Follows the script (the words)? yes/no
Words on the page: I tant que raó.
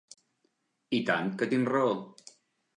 no